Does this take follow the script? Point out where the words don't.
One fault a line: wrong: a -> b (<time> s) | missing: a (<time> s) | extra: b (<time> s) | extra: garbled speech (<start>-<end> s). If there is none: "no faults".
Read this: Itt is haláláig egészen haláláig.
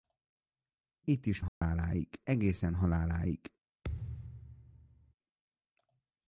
no faults